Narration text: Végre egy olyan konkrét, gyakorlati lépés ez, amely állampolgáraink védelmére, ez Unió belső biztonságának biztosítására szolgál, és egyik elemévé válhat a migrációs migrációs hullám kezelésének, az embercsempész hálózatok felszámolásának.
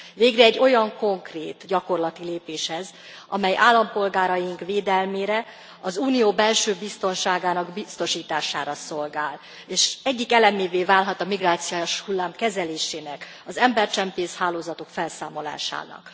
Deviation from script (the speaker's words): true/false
true